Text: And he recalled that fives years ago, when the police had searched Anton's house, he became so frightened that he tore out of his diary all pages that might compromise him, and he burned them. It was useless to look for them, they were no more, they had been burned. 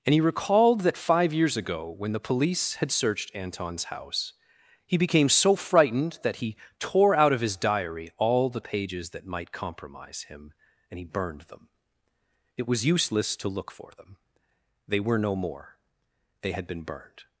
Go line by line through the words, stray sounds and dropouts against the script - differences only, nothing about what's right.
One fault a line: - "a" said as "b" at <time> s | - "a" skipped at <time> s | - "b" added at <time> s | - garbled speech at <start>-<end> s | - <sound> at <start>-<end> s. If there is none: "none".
- "fives" said as "five" at 1.0 s
- "the" added at 8.5 s